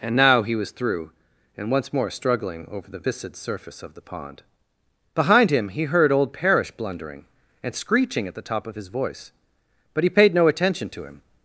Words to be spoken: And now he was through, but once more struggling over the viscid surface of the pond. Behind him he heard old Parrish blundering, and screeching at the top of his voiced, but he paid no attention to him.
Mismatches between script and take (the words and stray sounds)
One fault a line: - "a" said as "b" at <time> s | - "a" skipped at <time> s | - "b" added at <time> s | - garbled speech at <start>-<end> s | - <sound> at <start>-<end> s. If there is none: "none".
- "but" said as "and" at 1.6 s
- "voiced" said as "voice" at 8.9 s